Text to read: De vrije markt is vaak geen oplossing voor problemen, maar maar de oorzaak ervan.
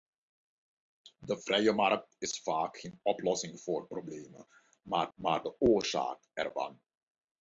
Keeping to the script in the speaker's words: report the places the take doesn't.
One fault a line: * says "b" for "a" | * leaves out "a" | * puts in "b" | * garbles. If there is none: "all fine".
all fine